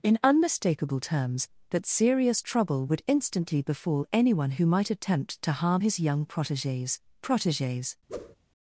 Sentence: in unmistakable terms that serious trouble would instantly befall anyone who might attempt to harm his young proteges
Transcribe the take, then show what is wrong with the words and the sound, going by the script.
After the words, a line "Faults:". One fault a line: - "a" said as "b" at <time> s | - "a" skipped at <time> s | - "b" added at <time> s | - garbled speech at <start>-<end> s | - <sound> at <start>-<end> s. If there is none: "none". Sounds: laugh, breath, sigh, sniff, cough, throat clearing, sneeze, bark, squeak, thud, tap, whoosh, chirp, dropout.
in unmistakable terms that serious trouble would instantly befall anyone who might attempt to harm his young proteges proteges
Faults:
- "proteges" added at 7.2 s
- whoosh at 8.1-8.4 s